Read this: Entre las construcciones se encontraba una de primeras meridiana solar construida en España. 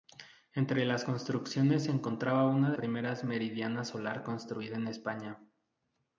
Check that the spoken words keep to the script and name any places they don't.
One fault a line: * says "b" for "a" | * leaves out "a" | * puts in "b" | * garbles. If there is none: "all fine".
all fine